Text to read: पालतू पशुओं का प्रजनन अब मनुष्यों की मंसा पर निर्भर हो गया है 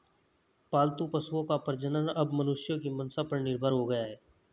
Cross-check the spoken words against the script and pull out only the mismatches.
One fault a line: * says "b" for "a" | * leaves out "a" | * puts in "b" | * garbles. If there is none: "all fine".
all fine